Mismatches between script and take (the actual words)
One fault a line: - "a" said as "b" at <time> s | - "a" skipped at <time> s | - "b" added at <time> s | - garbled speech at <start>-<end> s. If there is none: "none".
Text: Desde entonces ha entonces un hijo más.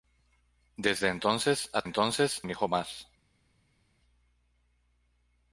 none